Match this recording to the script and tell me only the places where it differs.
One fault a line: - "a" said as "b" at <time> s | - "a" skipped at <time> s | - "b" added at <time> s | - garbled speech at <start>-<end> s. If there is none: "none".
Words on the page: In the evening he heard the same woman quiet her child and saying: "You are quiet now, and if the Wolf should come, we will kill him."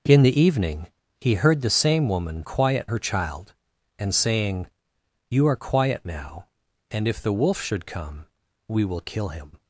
none